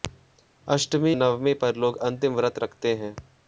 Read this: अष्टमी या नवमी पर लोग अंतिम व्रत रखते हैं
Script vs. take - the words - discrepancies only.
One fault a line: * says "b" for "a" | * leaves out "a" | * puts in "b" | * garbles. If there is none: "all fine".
* leaves out "या"